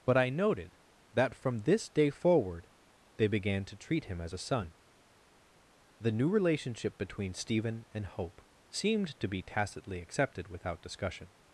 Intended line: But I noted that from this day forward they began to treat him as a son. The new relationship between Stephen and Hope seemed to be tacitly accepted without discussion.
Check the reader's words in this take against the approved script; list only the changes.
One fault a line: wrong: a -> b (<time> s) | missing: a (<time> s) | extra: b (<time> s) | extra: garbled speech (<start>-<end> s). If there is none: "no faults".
no faults